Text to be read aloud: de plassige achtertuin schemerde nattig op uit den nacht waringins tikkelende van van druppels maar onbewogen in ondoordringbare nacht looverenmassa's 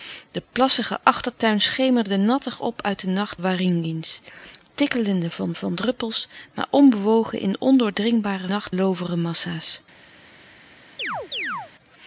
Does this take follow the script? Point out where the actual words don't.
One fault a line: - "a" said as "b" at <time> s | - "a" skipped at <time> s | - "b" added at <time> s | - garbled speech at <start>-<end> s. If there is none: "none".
none